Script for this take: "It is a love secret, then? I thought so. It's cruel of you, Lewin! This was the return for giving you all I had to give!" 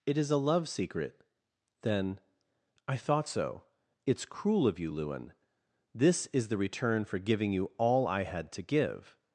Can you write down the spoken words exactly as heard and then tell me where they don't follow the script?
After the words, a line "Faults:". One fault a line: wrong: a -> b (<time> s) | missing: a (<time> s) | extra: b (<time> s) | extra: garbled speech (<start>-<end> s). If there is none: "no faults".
"It is a love secret, then? I thought so. It's cruel of you, Lewin! This is the return for giving you all I had to give!"
Faults:
wrong: was -> is (6.3 s)